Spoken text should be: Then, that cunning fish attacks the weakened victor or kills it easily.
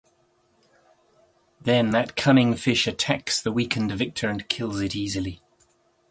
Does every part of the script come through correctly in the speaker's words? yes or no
no